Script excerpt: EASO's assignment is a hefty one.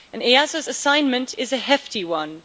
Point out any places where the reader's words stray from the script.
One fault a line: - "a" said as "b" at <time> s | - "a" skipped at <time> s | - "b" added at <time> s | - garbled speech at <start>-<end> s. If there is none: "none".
none